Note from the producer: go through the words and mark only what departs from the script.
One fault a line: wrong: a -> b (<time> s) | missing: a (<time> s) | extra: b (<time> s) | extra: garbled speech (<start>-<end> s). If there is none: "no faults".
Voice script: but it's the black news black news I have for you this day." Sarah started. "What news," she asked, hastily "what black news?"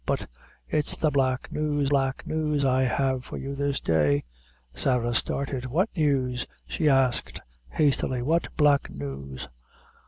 no faults